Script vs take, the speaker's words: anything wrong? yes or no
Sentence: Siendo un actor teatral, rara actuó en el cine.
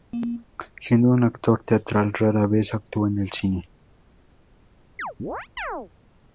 yes